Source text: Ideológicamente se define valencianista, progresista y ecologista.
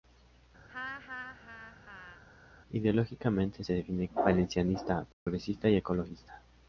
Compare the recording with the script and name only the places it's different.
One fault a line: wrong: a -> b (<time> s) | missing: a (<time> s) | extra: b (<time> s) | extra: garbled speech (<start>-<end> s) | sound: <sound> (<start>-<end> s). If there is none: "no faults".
sound: laugh (0.7-2.2 s)
sound: dropout (5.1-5.3 s)